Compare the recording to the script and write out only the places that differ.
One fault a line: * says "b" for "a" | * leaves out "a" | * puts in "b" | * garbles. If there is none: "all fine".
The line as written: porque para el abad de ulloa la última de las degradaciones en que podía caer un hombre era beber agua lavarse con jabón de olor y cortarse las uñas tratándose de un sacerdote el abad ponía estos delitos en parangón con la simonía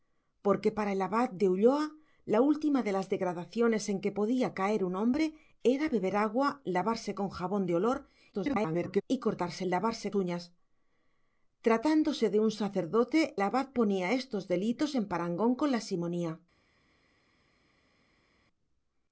* garbles
* says "lavarse" for "las"
* leaves out "el"